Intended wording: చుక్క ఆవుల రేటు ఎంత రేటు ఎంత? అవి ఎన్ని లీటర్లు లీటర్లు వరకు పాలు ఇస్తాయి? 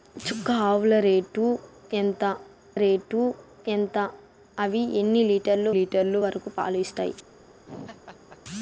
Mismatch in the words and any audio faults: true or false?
true